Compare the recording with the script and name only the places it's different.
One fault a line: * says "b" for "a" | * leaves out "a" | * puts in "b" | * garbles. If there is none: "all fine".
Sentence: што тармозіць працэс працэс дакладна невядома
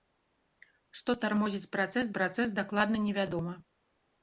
all fine